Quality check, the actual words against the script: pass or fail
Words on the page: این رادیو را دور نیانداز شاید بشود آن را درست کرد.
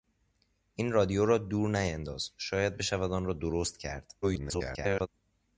fail